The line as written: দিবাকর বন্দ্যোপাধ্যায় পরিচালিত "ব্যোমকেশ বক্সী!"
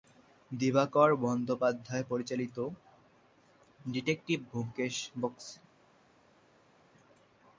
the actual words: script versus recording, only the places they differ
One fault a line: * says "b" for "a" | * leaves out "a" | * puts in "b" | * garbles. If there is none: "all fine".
* puts in "ডিটেকটিভ"